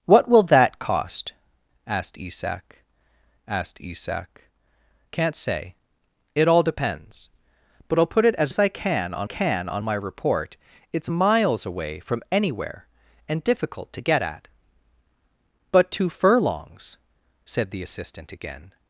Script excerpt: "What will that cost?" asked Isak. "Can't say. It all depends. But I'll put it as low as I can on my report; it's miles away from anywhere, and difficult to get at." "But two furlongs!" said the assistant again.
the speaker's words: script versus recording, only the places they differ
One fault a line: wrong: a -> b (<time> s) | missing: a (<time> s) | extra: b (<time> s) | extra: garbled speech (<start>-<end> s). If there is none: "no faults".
extra: asked Isak (3.5 s)
missing: low (8.5 s)
extra: can on (9.2 s)